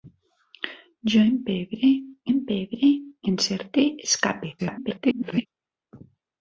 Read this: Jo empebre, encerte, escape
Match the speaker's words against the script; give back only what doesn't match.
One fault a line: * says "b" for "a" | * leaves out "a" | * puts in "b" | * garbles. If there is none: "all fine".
* puts in "empebre"
* garbles